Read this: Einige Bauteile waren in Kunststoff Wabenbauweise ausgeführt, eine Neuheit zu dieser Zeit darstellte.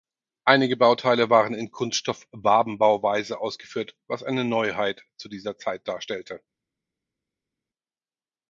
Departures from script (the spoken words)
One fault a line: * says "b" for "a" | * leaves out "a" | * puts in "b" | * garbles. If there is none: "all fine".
* puts in "was"